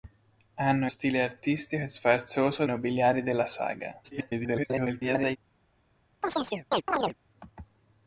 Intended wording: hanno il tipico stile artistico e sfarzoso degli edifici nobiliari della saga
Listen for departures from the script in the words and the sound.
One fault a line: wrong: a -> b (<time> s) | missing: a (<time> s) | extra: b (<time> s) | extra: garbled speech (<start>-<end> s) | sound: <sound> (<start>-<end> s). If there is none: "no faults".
missing: il tipico (0.9 s)
missing: degli edifici (2.7 s)
extra: garbled speech (4.0-5.4 s)
sound: chirp (6.2-7.2 s)